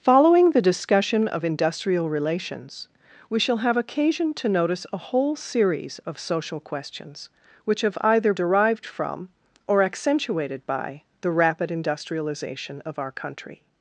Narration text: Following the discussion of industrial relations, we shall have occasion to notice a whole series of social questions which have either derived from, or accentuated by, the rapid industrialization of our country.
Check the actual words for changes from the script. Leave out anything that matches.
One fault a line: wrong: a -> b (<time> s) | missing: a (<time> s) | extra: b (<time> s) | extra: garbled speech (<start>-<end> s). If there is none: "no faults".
no faults